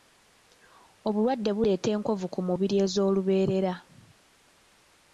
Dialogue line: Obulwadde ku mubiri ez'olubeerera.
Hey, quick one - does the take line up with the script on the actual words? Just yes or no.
no